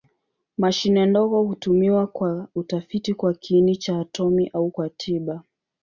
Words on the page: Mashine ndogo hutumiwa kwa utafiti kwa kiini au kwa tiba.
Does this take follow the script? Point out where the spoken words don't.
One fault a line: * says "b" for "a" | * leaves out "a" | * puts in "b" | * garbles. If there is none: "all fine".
* puts in "cha atomi"